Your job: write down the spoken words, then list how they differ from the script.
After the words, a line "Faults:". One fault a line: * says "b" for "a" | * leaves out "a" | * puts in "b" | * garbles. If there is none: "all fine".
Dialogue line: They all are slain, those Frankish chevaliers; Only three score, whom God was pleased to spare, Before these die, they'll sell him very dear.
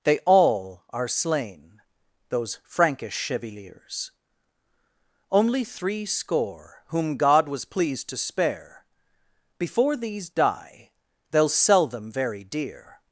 They all are slain, those Frankish chevaliers; Only three score, whom God was pleased to spare, Before these die, they'll sell them very dear.
Faults:
* says "them" for "him"